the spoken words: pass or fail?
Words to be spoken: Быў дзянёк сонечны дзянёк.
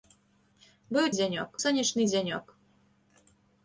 pass